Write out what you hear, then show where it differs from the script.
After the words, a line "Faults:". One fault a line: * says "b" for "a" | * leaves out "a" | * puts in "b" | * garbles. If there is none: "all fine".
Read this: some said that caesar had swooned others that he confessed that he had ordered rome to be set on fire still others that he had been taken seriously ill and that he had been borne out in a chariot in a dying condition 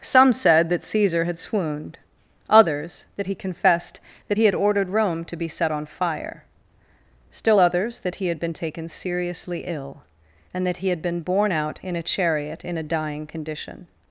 some said that caesar had swooned others that he confessed that he had ordered rome to be set on fire still others that he had been taken seriously ill and that he had been borne out in a chariot in a dying condition
Faults:
all fine